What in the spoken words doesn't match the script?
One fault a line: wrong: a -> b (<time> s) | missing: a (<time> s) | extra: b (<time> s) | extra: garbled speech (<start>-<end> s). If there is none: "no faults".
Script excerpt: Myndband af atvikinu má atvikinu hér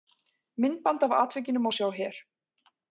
wrong: atvikinu -> sjá (1.7 s)